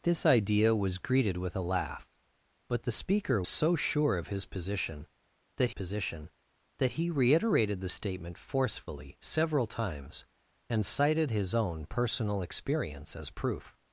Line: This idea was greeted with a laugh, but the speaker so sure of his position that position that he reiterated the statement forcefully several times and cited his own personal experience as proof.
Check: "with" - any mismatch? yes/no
no